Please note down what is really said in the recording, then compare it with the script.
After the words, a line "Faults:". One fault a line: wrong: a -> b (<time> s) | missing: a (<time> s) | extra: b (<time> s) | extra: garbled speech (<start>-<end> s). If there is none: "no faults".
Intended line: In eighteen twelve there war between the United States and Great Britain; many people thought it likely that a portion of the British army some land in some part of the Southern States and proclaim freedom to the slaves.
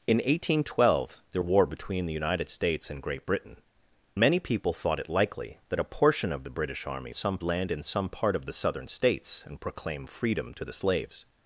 In eighteen twelve there war between the United States and Great Britain; many people thought it likely that a portion of the British army some land in some part of the Southern States and proclaim freedom to the slaves.
Faults:
no faults